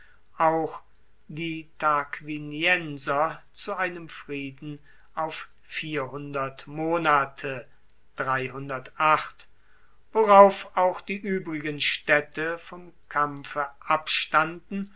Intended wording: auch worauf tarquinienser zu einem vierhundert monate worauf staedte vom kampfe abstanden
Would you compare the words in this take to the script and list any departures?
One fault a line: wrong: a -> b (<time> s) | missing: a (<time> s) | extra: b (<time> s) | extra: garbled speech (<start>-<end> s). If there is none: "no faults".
wrong: worauf -> die (1.3 s)
extra: frieden auf (4.1 s)
extra: auch die uebrigen (10.8 s)